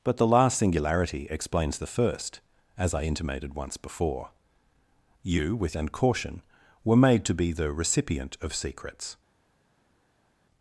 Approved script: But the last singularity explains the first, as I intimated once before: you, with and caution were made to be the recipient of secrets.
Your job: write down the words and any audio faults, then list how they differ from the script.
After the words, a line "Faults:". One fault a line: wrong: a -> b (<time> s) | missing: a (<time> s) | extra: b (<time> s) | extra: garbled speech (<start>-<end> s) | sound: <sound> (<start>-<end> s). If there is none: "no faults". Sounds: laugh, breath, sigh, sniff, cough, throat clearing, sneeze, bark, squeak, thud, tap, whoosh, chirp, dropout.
But the last singularity explains the first, as I intimated once before: you, with and caution were made to be the recipient of secrets.
Faults:
no faults